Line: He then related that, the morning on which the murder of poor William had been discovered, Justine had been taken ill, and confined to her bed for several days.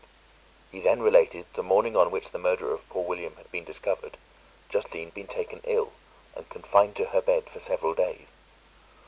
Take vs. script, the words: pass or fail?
fail